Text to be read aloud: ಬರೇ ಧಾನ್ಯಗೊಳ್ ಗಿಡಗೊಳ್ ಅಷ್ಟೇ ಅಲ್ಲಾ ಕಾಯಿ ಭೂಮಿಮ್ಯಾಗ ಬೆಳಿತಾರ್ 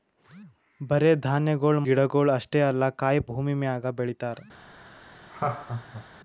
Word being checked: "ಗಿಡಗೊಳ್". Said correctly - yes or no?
yes